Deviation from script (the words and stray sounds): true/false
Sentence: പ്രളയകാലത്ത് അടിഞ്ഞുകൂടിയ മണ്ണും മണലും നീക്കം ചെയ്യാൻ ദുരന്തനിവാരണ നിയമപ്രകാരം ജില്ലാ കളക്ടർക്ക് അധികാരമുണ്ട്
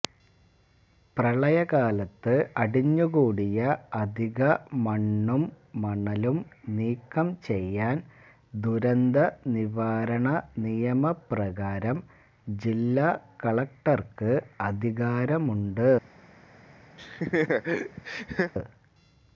true